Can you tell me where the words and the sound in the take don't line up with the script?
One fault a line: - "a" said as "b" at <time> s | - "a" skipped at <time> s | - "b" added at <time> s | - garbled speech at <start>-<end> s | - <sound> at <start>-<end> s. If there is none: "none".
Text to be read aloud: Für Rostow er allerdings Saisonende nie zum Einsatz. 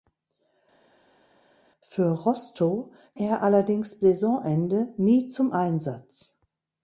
none